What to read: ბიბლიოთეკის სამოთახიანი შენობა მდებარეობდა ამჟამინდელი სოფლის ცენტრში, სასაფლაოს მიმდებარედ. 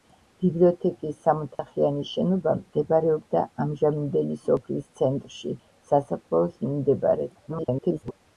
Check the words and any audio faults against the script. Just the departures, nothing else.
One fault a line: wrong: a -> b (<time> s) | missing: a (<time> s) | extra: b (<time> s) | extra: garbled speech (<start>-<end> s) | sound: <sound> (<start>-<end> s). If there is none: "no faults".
sound: dropout (1.5-1.6 s)
extra: garbled speech (7.5-8.1 s)